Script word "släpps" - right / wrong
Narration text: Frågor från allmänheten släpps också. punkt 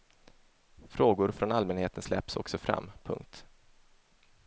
right